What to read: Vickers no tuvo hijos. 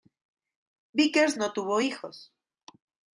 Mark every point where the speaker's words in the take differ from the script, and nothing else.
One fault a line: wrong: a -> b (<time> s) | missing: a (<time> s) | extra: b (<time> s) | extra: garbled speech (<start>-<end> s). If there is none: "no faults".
no faults